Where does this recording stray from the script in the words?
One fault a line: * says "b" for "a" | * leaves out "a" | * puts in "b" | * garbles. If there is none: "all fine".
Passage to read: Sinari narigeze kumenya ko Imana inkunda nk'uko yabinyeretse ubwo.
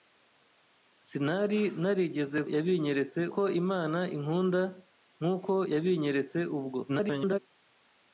* says "yabinyeretse" for "kumenya"
* garbles